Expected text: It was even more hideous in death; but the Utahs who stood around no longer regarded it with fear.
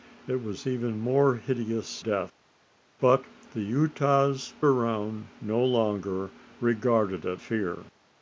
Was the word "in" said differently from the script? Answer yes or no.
yes